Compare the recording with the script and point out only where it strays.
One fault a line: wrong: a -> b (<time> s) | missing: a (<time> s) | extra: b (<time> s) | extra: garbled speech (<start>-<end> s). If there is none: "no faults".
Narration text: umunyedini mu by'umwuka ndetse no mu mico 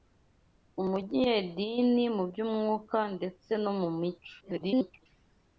extra: garbled speech (4.4-5.1 s)